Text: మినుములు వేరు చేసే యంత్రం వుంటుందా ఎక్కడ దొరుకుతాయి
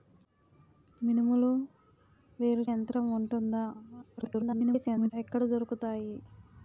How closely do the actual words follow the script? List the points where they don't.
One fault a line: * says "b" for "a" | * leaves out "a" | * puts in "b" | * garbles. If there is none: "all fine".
* leaves out "చేసే"
* garbles